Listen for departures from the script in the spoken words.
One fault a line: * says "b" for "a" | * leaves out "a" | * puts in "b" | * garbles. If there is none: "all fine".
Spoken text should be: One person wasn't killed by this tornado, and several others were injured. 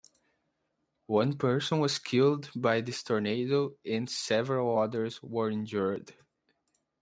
* says "was" for "wasn't"